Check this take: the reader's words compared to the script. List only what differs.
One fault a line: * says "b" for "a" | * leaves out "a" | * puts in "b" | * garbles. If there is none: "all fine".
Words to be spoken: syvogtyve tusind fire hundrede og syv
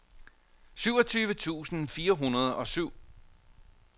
all fine